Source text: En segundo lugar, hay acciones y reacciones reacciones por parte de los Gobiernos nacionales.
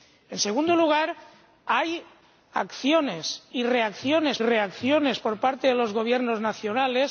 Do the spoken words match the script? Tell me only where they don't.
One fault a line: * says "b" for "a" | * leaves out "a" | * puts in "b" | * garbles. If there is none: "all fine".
all fine